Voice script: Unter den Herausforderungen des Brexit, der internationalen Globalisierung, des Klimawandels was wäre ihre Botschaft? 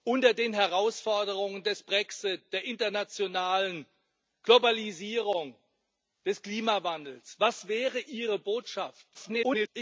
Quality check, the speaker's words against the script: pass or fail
fail